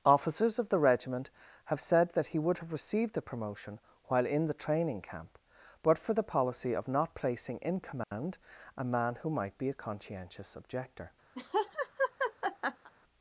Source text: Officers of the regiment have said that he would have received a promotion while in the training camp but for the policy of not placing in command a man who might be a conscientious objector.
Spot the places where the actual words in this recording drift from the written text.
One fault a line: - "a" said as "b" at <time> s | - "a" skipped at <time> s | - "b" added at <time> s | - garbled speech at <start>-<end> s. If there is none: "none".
- "a" said as "the" at 3.1 s